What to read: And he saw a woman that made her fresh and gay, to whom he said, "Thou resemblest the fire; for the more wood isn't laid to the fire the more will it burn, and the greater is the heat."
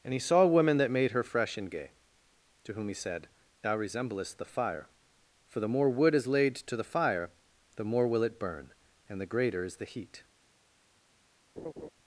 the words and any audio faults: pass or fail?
fail